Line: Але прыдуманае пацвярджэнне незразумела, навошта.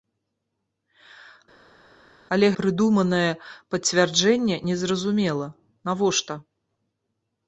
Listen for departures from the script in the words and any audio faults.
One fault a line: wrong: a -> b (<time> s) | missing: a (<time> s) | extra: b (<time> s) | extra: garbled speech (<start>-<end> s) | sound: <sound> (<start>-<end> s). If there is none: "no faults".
no faults